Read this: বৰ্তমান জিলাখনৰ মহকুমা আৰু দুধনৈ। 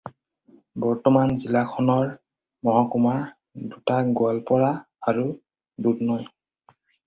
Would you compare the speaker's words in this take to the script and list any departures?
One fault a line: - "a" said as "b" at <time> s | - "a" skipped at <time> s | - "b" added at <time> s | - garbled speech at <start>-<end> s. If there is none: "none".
- "দুটা গোৱালপাৰা" added at 3.7 s